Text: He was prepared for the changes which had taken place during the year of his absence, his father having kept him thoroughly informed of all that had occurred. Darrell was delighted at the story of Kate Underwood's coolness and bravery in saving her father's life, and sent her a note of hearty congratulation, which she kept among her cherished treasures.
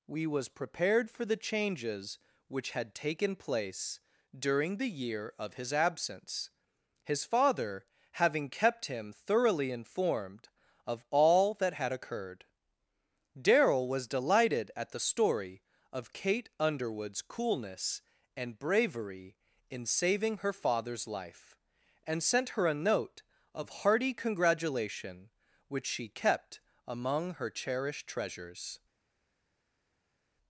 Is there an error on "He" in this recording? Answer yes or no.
yes